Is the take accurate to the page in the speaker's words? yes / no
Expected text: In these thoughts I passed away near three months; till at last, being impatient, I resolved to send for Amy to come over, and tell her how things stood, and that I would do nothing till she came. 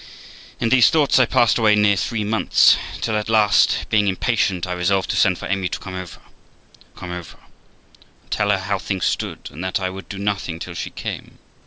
no